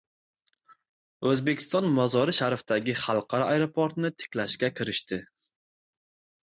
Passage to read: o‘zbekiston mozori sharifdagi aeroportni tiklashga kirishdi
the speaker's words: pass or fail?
fail